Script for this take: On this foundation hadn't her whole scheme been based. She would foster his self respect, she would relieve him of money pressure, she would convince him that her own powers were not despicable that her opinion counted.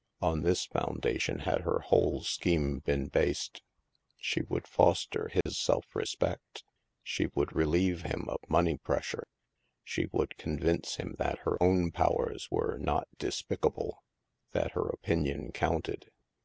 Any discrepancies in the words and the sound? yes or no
yes